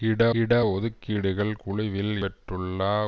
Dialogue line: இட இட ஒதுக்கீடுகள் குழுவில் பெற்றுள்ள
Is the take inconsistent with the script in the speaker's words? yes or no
no